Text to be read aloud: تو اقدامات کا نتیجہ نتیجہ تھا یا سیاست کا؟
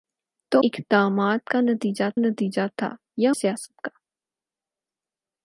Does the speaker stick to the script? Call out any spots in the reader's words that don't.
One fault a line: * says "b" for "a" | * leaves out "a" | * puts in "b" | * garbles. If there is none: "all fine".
all fine